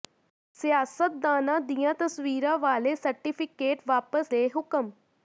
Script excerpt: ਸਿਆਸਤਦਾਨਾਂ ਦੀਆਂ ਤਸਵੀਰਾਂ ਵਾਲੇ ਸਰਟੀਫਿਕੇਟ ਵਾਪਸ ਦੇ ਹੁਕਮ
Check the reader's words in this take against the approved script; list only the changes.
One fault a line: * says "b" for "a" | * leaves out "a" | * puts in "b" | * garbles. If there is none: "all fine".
all fine